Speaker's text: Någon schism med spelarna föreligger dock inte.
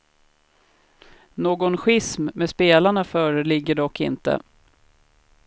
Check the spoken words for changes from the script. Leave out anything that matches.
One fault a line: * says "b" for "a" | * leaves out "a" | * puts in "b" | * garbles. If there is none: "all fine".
all fine